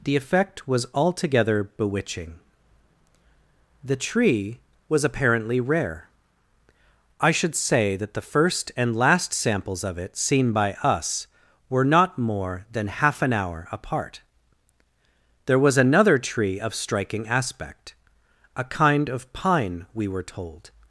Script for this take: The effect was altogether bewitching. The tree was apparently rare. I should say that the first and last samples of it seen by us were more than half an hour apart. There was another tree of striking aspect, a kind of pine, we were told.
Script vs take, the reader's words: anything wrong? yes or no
yes